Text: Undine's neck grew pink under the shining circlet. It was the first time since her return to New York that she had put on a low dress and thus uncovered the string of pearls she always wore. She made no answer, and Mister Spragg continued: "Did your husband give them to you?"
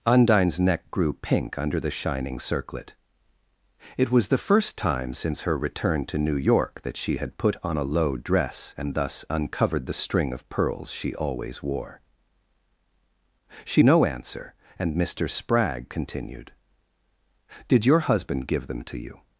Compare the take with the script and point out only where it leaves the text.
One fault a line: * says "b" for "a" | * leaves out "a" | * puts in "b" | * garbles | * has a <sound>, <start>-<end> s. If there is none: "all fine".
* leaves out "made"